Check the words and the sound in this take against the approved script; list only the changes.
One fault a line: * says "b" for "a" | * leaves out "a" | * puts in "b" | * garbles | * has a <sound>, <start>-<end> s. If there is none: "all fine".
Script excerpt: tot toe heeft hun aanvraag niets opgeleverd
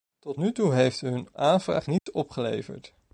* puts in "nu"
* has a dropout, 2.0-2.1 s